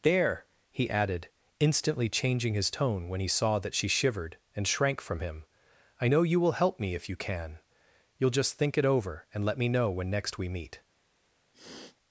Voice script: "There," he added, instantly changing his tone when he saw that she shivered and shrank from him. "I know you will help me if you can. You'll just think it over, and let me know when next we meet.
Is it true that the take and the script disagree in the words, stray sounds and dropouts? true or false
true